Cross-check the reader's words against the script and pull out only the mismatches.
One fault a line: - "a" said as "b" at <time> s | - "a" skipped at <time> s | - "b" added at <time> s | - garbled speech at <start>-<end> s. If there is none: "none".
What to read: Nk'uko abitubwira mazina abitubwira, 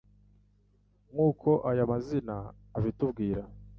- "abitubwira" said as "aya" at 1.7 s